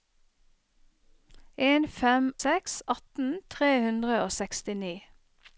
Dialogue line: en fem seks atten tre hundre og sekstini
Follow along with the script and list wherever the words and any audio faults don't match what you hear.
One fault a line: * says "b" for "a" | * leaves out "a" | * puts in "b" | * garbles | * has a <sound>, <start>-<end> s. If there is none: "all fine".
all fine